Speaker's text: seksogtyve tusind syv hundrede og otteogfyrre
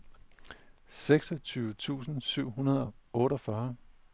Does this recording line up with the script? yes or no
yes